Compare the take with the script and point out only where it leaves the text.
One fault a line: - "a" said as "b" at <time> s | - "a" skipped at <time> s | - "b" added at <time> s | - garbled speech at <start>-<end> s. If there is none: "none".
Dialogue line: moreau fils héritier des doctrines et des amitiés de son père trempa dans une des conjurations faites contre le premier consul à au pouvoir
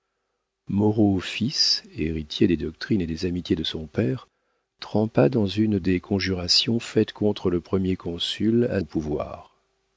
none